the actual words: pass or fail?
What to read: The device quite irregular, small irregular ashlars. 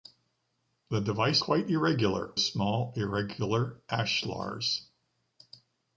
pass